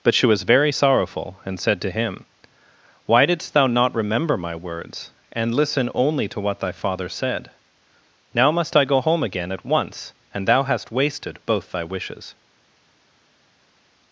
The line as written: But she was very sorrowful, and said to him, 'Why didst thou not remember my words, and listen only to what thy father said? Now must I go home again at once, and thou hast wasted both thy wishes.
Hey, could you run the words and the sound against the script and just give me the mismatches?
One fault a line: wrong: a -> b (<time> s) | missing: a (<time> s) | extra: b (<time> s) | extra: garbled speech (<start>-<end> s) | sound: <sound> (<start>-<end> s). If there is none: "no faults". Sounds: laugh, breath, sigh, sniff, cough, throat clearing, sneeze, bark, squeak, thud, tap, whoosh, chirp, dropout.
no faults